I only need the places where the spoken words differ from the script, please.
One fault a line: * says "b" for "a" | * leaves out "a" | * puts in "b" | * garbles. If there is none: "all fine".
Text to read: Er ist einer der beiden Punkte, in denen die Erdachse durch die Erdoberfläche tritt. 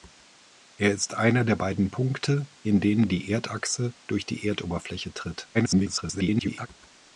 * garbles